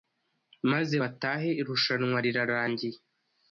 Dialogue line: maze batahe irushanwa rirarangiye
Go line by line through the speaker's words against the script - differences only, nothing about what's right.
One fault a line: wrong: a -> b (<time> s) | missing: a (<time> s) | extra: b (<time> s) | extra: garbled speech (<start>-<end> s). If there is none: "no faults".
no faults